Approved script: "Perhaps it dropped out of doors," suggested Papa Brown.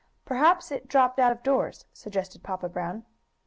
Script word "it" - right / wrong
right